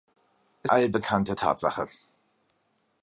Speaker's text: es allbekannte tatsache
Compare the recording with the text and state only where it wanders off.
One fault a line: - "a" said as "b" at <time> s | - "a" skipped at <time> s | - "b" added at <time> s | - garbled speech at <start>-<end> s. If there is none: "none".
none